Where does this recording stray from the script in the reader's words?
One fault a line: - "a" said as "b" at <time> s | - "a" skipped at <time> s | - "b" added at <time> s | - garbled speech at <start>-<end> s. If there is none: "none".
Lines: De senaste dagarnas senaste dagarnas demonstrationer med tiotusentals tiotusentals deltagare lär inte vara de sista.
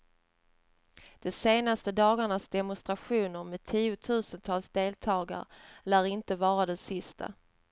- "senaste dagarnas" skipped at 2.5 s
- "tiotusentals" skipped at 4.7 s